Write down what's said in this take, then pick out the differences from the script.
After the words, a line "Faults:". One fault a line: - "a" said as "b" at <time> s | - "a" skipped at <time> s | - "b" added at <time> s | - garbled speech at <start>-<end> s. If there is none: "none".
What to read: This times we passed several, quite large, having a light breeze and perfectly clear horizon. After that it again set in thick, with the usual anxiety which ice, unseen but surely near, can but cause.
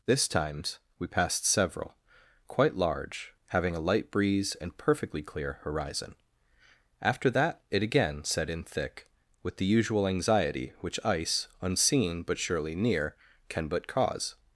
This times we passed several, quite large, having a light breeze and perfectly clear horizon. After that it again set in thick, with the usual anxiety which ice, unseen but surely near, can but cause.
Faults:
none